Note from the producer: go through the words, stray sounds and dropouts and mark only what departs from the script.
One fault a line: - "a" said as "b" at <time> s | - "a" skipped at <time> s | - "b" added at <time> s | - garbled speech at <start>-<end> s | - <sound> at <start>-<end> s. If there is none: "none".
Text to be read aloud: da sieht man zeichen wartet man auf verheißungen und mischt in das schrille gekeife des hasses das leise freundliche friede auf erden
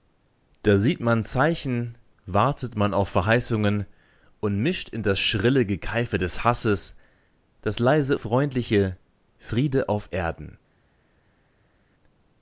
none